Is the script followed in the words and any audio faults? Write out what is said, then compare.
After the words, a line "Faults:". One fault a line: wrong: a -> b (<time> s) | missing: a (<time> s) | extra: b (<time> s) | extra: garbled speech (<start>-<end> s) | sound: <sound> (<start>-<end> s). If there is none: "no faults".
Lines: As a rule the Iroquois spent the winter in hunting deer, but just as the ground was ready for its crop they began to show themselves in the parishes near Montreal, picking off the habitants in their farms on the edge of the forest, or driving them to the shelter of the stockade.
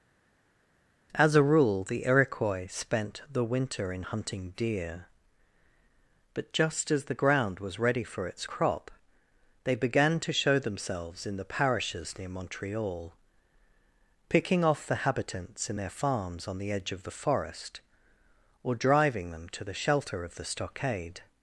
As a rule the Iroquois spent the winter in hunting deer, but just as the ground was ready for its crop they began to show themselves in the parishes near Montreal, picking off the habitants in their farms on the edge of the forest, or driving them to the shelter of the stockade.
Faults:
no faults